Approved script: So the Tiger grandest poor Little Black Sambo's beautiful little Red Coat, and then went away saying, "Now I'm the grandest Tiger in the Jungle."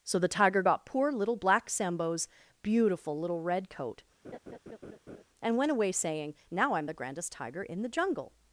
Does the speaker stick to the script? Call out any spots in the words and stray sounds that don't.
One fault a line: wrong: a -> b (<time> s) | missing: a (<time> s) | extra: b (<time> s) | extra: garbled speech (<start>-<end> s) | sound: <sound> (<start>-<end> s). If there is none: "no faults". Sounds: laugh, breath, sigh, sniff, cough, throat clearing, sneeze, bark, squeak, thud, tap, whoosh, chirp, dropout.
wrong: grandest -> got (0.6 s)
sound: laugh (4.2-5.2 s)
missing: then (5.6 s)